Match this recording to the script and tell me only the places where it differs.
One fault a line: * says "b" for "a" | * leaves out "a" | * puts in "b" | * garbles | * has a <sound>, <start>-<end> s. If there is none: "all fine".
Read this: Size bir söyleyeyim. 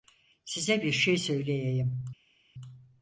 * puts in "şey"